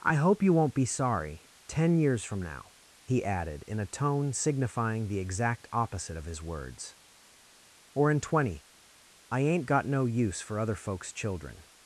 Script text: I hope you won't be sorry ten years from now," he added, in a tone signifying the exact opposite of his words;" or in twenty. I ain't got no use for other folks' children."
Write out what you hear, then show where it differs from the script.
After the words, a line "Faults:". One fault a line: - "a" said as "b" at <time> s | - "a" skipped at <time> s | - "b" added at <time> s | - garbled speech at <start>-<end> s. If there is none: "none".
I hope you won't be sorry ten years from now," he added, in a tone signifying the exact opposite of his words;" or in twenty. I ain't got no use for other folks' children."
Faults:
none